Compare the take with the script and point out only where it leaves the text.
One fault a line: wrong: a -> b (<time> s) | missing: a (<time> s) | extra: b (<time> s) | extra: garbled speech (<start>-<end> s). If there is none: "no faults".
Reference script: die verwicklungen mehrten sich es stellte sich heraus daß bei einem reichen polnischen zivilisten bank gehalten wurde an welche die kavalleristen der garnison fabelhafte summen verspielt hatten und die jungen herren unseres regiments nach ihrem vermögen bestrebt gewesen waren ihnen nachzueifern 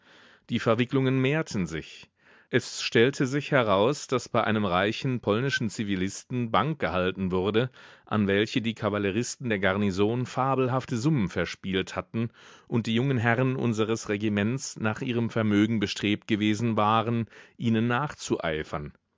no faults